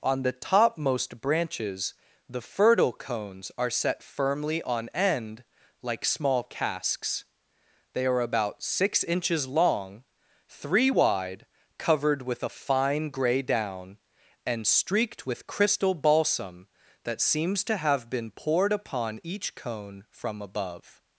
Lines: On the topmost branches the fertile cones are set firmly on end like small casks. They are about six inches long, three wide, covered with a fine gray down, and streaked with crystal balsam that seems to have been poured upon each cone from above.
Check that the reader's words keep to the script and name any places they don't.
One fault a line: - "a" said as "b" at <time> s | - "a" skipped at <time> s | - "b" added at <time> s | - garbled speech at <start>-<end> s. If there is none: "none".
none